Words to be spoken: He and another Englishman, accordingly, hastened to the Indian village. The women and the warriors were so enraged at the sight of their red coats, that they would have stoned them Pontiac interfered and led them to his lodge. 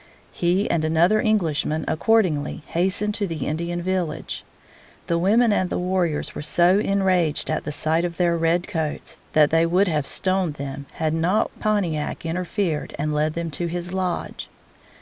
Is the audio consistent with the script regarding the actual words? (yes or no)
no